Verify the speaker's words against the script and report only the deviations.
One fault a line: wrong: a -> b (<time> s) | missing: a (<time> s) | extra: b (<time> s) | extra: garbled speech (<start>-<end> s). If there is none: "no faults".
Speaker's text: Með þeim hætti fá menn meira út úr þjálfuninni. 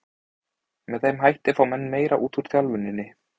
no faults